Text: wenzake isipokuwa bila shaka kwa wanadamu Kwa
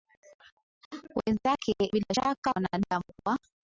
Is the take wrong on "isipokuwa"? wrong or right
wrong